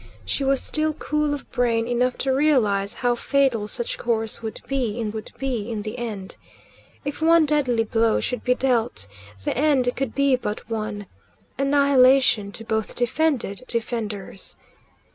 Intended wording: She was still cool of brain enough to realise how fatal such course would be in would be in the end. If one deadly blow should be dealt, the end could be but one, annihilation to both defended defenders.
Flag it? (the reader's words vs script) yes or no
no